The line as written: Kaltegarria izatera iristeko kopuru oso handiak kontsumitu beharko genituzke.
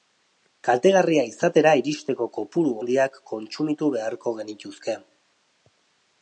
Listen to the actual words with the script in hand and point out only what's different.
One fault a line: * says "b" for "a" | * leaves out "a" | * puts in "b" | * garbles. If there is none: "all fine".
* leaves out "oso"